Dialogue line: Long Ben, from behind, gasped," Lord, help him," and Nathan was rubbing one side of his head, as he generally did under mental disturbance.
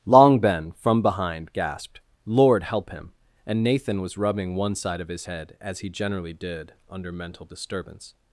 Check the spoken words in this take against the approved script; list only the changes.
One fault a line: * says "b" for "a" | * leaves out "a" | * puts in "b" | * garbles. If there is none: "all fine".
all fine